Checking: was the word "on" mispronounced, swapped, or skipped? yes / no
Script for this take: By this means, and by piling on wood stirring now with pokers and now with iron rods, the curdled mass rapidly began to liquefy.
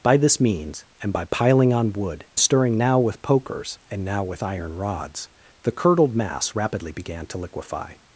no